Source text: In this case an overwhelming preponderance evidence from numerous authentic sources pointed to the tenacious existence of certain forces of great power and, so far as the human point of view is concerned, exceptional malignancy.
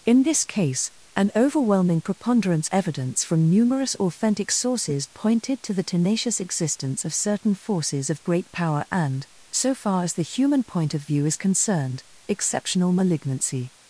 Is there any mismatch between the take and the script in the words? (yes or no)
no